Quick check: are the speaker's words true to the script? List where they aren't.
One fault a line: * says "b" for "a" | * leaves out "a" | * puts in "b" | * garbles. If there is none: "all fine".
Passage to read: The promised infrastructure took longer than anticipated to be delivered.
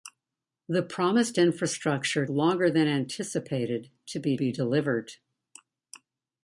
* leaves out "took"
* puts in "be"